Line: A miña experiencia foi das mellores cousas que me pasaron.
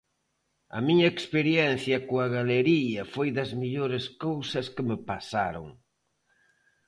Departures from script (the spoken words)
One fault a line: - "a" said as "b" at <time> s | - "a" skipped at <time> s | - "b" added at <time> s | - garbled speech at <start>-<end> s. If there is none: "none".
- "coa galería" added at 2.1 s